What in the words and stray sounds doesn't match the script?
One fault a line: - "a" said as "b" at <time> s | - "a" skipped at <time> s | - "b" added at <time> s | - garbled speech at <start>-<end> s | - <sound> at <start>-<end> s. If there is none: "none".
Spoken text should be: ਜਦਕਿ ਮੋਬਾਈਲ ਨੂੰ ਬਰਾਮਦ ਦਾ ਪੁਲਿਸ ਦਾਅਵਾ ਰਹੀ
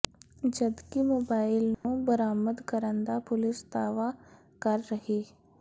- dropout at 1.7-1.8 s
- "ਕਰਨ" added at 2.7 s
- "ਕਰ" added at 4.6 s